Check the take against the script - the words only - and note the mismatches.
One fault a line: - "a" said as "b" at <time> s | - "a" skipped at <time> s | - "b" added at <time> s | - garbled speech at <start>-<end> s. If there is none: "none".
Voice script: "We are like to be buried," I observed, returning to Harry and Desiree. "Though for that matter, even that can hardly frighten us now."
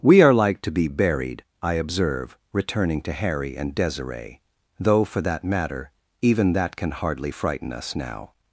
- "observed" said as "observe" at 1.7 s